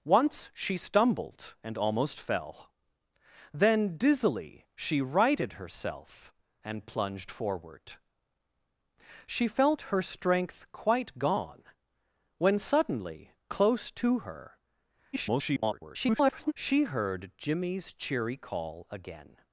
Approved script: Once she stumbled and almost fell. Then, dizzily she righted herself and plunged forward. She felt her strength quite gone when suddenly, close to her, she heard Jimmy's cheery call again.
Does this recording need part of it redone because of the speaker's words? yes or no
yes